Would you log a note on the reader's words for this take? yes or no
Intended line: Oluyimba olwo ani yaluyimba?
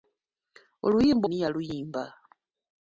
yes